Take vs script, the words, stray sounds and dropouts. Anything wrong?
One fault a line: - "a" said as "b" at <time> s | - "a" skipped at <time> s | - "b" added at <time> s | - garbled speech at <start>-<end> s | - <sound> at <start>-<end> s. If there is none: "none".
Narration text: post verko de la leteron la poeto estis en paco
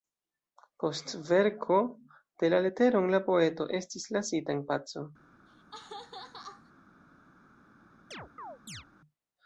- "lasita" added at 4.2 s
- laugh at 5.5-6.7 s
- chirp at 8.1-8.8 s